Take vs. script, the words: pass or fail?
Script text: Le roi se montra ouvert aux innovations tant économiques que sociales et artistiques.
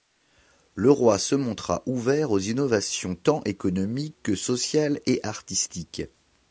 pass